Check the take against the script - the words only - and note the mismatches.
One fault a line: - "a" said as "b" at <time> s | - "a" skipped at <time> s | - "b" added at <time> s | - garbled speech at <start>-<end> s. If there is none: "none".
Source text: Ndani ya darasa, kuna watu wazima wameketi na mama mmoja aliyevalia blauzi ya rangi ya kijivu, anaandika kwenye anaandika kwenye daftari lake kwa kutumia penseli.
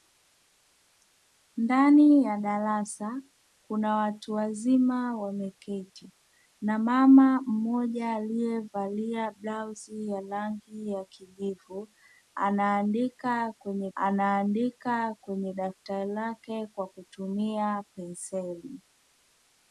none